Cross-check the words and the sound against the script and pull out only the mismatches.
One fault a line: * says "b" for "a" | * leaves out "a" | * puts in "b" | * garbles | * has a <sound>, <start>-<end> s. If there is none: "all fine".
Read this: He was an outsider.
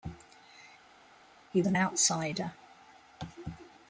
* leaves out "was"